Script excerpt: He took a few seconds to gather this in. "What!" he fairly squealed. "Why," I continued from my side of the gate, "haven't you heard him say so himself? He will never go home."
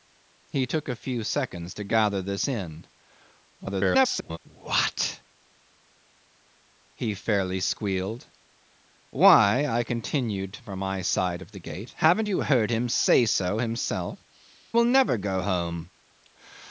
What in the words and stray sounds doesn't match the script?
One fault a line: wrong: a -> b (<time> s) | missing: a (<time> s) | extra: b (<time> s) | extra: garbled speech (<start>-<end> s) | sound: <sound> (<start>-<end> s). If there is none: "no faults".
extra: garbled speech (3.6-4.4 s)
missing: He (14.2 s)